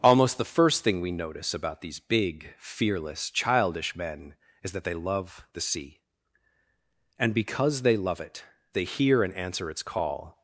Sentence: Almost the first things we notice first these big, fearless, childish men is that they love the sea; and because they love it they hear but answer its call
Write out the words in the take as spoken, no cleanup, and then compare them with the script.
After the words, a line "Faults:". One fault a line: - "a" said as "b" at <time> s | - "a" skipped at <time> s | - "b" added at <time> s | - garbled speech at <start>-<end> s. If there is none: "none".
Almost the first thing we notice about these big, fearless, childish men is that they love the sea; and because they love it they hear and answer its call
Faults:
- "things" said as "thing" at 0.8 s
- "first" said as "about" at 1.5 s
- "but" said as "and" at 9.2 s